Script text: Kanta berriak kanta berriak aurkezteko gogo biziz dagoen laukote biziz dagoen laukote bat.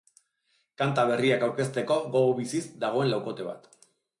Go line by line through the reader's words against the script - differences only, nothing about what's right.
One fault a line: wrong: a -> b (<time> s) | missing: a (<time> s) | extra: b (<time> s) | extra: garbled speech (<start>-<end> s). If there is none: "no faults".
missing: kanta berriak (1.4 s)
missing: biziz dagoen laukote (3.5 s)